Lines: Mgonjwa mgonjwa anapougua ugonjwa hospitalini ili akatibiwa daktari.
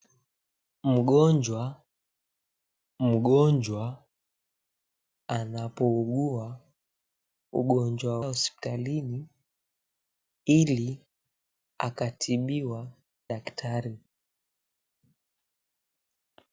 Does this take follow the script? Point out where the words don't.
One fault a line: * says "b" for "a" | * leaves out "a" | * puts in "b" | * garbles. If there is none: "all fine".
all fine